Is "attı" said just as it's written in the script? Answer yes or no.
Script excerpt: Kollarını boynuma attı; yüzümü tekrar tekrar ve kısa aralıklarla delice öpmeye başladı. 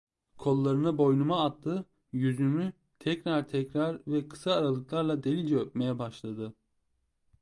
yes